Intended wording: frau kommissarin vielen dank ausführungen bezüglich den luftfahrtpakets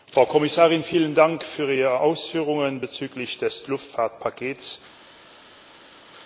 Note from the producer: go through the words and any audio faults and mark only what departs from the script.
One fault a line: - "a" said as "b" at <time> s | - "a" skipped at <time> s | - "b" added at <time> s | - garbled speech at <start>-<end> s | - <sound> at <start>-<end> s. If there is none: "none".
- "für ihre" added at 1.4 s
- "den" said as "des" at 3.4 s